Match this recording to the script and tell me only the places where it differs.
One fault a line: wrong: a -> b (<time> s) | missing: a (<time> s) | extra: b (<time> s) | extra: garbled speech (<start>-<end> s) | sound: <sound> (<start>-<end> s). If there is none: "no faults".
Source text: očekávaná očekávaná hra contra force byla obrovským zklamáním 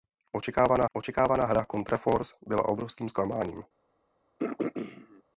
sound: throat clearing (4.4-5.2 s)